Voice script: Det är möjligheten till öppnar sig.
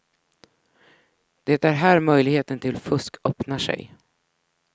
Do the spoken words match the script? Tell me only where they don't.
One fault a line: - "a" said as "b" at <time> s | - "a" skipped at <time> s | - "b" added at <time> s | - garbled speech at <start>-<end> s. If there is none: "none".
- "här" added at 1.7 s
- "fusk" added at 2.8 s